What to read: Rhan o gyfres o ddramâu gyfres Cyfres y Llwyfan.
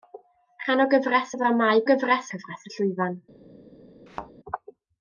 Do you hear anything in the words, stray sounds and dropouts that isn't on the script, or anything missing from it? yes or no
yes